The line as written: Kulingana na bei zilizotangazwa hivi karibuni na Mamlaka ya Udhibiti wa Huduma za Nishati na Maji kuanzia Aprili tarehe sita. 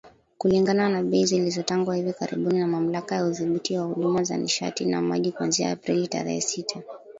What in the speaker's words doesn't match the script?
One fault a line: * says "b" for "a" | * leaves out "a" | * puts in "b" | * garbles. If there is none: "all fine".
all fine